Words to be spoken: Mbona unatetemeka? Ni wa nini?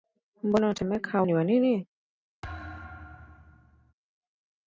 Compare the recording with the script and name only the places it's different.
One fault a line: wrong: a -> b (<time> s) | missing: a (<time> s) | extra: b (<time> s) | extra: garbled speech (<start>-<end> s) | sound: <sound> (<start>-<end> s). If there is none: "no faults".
sound: thud (2.4-3.9 s)